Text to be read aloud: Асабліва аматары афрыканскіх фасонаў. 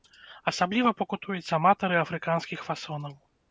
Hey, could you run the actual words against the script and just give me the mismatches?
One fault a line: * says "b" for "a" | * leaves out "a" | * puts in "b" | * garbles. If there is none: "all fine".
* puts in "пакутуюць"